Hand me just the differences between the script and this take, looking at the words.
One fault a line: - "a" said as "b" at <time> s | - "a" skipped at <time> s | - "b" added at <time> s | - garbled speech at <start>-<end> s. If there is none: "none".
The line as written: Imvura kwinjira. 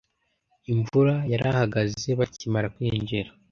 - "yarahagaze bakimara" added at 1.3 s